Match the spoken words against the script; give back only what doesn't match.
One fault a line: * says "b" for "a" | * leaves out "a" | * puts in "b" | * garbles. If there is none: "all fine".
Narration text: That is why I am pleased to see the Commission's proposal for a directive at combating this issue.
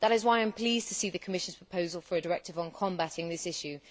* says "on" for "at"